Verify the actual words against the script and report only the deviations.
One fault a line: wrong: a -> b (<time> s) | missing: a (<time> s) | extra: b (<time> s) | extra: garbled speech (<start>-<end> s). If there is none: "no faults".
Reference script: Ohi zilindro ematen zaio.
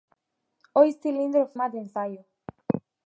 no faults